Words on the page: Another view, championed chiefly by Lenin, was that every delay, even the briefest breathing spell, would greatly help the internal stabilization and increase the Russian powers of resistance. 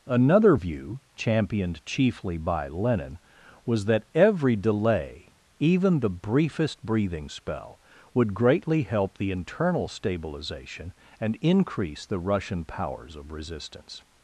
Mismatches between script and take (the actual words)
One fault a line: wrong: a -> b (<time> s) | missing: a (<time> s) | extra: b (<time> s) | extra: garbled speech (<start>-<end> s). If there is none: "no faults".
no faults